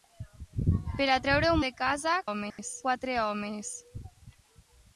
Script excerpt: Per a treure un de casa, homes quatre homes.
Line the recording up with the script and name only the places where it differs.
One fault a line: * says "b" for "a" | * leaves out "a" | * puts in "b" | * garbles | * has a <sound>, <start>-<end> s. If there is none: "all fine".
* has a dropout, 2.5-2.6 s